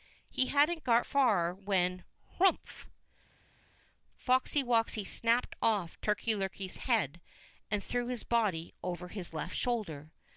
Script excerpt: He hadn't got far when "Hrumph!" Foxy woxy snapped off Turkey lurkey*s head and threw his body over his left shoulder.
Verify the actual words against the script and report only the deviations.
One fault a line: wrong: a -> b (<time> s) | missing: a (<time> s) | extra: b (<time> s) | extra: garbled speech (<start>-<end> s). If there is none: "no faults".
no faults